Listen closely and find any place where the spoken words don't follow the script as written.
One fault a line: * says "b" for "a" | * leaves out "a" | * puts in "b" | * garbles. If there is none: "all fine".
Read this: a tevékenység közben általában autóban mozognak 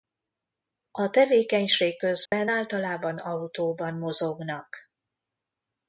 all fine